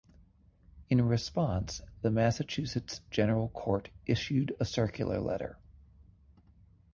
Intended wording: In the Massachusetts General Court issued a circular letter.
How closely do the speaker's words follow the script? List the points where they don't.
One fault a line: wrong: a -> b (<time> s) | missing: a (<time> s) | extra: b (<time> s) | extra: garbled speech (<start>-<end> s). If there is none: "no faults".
extra: response (1.0 s)